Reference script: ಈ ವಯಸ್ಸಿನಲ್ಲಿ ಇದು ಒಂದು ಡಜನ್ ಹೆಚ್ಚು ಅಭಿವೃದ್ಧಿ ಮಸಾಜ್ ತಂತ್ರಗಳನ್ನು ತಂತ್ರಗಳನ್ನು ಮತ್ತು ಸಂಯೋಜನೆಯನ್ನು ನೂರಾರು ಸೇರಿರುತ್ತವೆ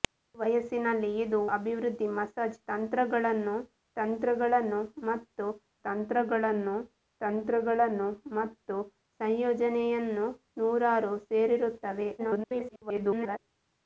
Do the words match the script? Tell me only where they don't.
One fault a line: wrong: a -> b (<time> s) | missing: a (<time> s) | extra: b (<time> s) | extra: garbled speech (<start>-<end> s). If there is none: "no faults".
wrong: ಒಂದು ಡಜನ್ ಹೆಚ್ಚು ಅಭಿವೃದ್ಧಿ ಮಸಾಜ್ -> ಅಭಿವೃದ್ಧಿ ಮಸಾಜ್ ತಂತ್ರಗಳನ್ನು ತಂತ್ರಗಳನ್ನು ಮತ್ತು (1.5 s)
extra: garbled speech (12.2-13.4 s)